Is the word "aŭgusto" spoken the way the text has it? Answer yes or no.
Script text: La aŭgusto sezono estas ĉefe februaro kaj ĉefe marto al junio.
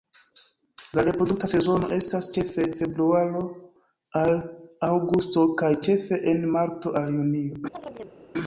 no